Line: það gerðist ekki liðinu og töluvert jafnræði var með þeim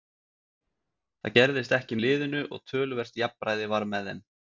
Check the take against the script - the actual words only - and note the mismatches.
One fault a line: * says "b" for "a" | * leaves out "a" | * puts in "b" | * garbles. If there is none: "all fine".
all fine